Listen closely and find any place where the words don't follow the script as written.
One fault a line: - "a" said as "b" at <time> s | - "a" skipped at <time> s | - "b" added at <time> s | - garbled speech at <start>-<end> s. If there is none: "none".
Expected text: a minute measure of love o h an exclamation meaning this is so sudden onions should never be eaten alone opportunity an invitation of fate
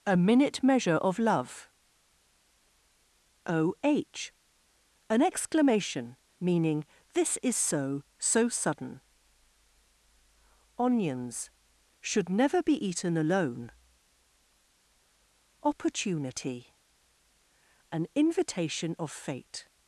- "so" added at 8.2 s